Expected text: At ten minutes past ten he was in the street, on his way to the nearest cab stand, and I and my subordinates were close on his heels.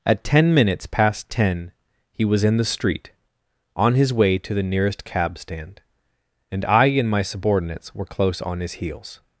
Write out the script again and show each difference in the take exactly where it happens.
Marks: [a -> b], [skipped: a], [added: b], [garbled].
At ten minutes past ten he was in the street, on his way to the nearest cab stand, and I and my subordinates were close on his heels.